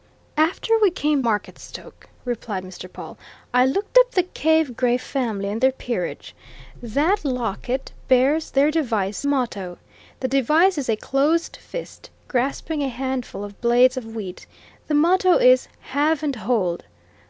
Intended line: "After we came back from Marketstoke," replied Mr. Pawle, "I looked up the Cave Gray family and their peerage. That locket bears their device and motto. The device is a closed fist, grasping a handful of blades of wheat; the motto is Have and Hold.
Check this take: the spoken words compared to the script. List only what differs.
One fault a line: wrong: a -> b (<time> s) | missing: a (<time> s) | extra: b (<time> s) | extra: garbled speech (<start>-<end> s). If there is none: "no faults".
missing: back from (1.2 s)
missing: and (9.3 s)